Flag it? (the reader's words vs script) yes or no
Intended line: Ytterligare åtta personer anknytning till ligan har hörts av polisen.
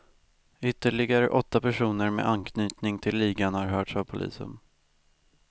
yes